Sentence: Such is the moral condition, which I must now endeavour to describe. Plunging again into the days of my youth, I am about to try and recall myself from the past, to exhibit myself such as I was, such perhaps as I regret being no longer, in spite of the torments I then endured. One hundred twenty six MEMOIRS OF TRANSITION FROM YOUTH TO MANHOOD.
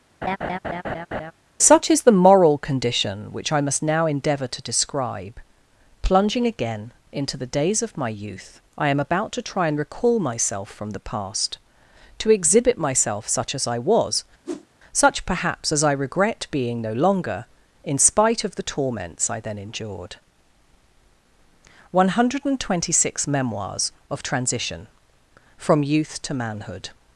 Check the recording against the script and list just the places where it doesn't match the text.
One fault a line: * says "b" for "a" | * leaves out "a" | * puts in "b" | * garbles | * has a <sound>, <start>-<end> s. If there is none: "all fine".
* has a laugh, 0.2-1.3 s
* has a whoosh, 14.4-14.7 s